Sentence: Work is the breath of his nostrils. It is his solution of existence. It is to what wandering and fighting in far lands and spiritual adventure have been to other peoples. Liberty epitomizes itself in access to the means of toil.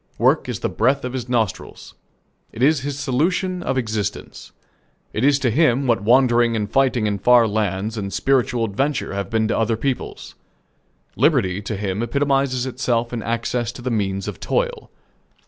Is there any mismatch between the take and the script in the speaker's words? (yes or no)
yes